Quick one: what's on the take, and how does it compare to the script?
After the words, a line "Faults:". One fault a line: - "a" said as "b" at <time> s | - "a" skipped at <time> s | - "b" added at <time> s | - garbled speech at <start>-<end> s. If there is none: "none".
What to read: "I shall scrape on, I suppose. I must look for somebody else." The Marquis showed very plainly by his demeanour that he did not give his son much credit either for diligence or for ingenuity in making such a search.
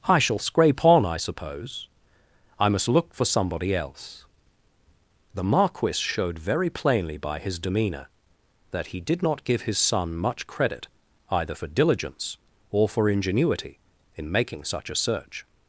"I shall scrape on, I suppose. I must look for somebody else." The Marquis showed very plainly by his demeanour that he did not give his son much credit either for diligence or for ingenuity in making such a search.
Faults:
none